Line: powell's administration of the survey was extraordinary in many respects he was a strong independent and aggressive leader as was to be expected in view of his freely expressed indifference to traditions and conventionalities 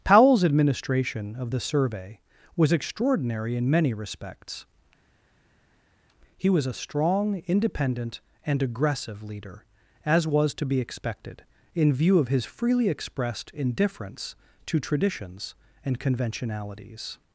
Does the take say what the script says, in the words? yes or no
yes